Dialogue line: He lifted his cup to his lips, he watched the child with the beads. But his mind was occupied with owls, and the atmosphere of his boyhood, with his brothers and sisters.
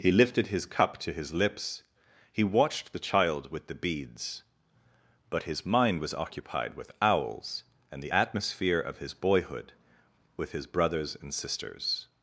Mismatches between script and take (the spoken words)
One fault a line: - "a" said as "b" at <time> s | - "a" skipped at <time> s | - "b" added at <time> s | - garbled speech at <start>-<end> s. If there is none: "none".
none